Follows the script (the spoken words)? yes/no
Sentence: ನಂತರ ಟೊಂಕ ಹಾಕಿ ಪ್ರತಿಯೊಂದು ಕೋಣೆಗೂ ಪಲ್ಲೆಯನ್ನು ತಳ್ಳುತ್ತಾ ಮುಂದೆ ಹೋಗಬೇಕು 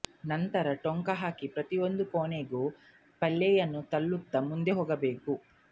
yes